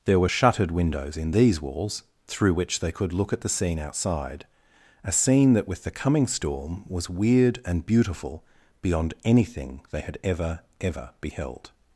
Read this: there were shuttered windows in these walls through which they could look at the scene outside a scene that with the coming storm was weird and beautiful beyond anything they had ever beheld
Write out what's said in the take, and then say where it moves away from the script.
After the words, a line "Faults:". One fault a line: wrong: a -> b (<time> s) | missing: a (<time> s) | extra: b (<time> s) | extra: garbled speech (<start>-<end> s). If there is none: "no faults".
there were shuttered windows in these walls through which they could look at the scene outside a scene that with the coming storm was weird and beautiful beyond anything they had ever ever beheld
Faults:
extra: ever (10.8 s)